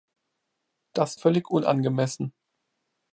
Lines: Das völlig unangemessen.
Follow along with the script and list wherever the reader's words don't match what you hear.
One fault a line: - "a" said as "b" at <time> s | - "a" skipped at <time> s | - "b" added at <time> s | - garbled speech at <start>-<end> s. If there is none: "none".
none